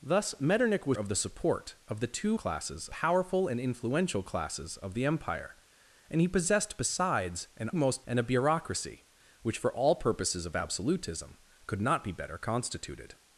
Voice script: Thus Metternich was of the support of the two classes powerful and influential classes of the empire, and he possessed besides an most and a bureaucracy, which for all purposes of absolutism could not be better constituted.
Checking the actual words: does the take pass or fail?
pass